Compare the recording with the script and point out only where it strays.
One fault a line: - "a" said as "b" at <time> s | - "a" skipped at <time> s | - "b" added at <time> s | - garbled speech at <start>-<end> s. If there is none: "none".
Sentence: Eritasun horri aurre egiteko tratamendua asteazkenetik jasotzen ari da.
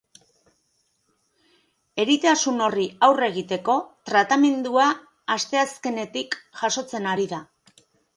none